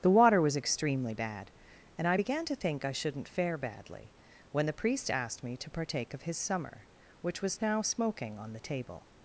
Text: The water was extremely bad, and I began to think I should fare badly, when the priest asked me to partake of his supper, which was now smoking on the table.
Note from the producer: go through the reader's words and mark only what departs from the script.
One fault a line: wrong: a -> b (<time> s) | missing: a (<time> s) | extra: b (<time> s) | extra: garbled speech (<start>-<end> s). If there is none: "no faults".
wrong: should -> shouldn't (2.9 s)
wrong: supper -> summer (6.4 s)